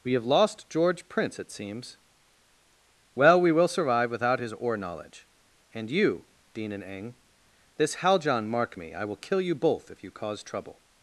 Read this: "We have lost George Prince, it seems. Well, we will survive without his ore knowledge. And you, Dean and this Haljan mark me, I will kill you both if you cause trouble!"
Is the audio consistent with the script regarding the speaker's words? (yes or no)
no